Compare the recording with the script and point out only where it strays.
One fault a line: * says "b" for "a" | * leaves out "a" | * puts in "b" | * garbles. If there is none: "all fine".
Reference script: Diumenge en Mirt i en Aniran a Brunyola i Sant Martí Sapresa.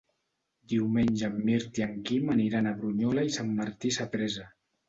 * puts in "Quim"